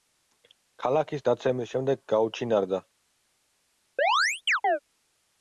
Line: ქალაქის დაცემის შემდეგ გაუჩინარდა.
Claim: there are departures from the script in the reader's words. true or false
false